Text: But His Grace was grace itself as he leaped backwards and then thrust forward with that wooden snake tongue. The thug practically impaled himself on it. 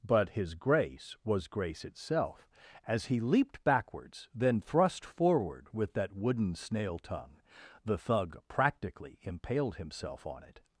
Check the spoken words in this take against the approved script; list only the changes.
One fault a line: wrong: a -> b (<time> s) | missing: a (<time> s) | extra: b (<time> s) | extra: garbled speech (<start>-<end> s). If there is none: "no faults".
missing: and (4.3 s)
wrong: snake -> snail (6.5 s)